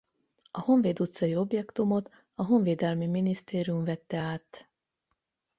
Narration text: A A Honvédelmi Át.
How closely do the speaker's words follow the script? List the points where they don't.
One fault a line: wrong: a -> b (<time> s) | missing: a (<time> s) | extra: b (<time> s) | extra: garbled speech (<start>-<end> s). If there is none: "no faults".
extra: Honvéd utcai objektumot (0.6 s)
extra: Minisztérium vette (3.1 s)